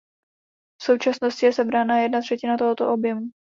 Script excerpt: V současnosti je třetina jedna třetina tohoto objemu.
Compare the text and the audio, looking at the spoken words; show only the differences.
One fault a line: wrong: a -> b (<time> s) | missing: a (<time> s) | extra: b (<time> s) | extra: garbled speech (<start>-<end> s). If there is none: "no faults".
wrong: třetina -> sebrána (1.5 s)